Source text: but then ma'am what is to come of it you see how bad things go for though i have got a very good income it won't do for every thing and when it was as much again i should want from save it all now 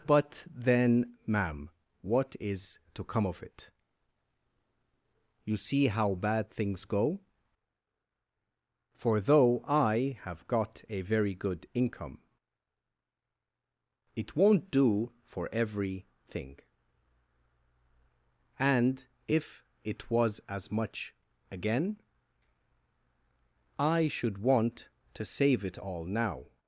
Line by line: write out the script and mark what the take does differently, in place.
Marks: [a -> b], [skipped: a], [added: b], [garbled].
but then ma'am what is to come of it you see how bad things go for though i have got a very good income it won't do for every thing and [when -> if] it was as much again i should want [from -> to] save it all now